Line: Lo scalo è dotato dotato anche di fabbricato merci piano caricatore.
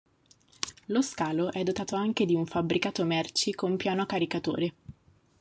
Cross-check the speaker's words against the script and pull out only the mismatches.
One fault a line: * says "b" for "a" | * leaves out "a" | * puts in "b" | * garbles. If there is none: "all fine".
* leaves out "dotato"
* puts in "un"
* puts in "con"